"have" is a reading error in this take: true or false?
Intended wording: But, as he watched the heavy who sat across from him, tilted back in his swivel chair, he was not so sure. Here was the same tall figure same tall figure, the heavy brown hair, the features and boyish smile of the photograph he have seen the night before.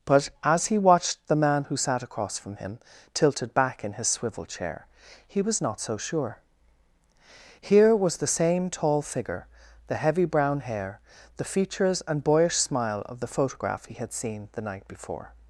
true